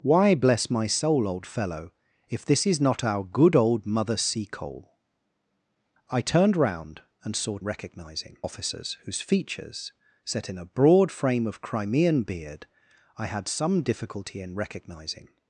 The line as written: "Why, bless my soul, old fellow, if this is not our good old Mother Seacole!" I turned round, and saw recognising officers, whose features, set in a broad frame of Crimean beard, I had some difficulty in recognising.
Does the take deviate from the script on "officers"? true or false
false